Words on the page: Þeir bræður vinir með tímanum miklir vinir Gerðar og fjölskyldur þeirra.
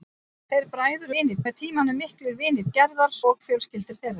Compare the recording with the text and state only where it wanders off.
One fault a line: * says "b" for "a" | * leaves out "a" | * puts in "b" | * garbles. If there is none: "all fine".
all fine